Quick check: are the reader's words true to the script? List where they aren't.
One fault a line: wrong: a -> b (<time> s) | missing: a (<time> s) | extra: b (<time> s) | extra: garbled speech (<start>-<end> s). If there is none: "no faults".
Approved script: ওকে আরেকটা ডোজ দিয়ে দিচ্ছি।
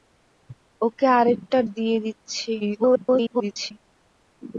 missing: ডোজ (1.6 s)
extra: garbled speech (2.6-3.7 s)